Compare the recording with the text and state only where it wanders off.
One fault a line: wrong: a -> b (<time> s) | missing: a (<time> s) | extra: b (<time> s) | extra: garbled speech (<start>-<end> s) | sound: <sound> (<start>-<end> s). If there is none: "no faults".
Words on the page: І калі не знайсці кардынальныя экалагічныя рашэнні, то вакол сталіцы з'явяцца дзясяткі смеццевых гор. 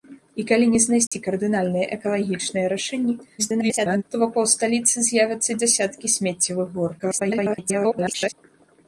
sound: dropout (1.1-1.1 s)
extra: garbled speech (3.4-4.0 s)
extra: garbled speech (7.0-8.3 s)